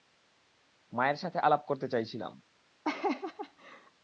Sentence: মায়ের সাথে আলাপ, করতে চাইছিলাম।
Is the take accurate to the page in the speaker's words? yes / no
yes